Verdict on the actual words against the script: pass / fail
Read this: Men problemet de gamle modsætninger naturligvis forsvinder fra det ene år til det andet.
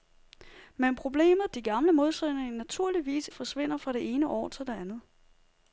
pass